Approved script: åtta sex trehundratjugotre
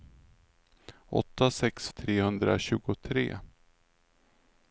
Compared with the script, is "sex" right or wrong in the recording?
right